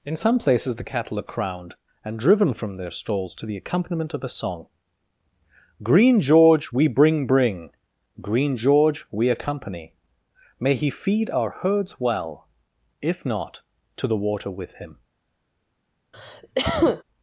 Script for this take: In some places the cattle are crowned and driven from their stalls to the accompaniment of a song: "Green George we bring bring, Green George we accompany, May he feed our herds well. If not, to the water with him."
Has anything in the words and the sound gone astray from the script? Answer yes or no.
yes